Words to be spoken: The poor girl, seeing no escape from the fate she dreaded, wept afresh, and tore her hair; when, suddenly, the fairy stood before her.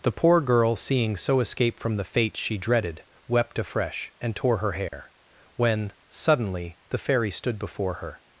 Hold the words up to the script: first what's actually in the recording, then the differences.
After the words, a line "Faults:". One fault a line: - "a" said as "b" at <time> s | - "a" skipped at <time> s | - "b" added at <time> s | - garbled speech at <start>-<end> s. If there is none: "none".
The poor girl, seeing so escape from the fate she dreaded, wept afresh, and tore her hair; when, suddenly, the fairy stood before her.
Faults:
- "no" said as "so" at 1.1 s